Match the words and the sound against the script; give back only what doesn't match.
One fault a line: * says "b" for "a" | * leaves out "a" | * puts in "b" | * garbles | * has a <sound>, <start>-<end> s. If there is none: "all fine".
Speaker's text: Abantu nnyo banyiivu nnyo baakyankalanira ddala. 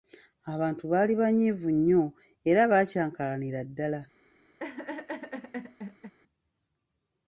* says "baali" for "nnyo"
* puts in "era"
* has a laugh, 4.6-6.1 s